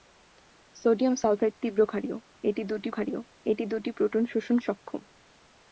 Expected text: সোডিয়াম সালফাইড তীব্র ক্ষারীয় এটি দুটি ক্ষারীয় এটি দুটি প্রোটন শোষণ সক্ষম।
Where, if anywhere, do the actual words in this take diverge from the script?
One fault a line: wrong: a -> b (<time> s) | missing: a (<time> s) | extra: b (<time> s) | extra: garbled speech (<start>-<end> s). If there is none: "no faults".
no faults